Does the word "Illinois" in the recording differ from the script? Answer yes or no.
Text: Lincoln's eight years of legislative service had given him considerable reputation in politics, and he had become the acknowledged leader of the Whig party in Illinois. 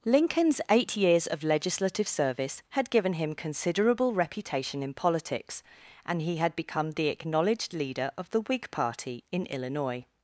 no